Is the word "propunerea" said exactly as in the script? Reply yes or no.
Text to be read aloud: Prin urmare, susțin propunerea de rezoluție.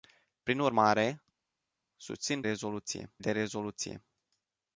no